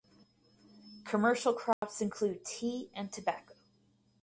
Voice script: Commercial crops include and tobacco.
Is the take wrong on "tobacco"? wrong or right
right